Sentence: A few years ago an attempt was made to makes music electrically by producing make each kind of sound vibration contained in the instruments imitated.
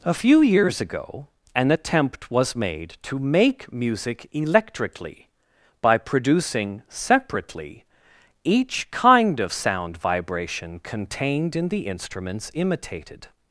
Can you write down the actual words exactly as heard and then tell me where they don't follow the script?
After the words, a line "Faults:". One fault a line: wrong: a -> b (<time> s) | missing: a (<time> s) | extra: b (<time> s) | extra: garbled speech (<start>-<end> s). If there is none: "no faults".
A few years ago an attempt was made to make music electrically by producing separately each kind of sound vibration contained in the instruments imitated.
Faults:
wrong: makes -> make (3.2 s)
wrong: make -> separately (6.9 s)